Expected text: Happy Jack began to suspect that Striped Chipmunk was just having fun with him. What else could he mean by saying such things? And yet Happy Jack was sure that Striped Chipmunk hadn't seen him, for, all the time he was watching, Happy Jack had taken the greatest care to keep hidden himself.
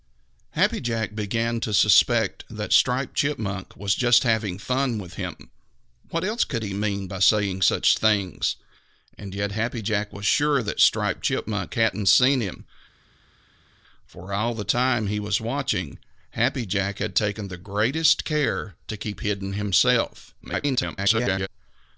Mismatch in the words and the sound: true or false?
true